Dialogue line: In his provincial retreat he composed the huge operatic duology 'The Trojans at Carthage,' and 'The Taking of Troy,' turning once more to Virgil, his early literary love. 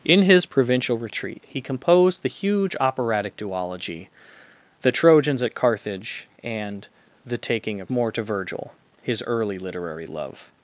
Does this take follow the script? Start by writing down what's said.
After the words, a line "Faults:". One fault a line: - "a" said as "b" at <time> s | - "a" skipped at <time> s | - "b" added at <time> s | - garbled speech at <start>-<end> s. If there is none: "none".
In his provincial retreat he composed the huge operatic duology 'The Trojans at Carthage,' and 'The Taking of More to Virgil, his early literary love.
Faults:
- "Troy turning once" skipped at 7.9 s